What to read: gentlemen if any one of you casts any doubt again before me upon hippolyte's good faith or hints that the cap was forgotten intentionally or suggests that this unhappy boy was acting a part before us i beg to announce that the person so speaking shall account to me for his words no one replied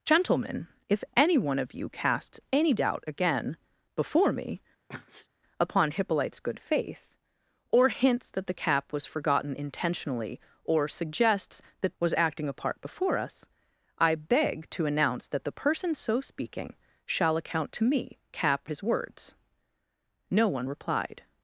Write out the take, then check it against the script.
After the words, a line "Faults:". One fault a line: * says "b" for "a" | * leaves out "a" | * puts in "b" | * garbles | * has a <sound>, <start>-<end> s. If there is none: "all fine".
gentlemen if any one of you casts any doubt again before me upon hippolyte's good faith or hints that the cap was forgotten intentionally or suggests that was acting a part before us i beg to announce that the person so speaking shall account to me cap his words no one replied
Faults:
* has a sneeze, 4.9-5.3 s
* leaves out "this unhappy boy"
* says "cap" for "for"